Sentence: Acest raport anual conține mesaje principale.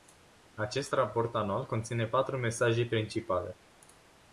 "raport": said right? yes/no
yes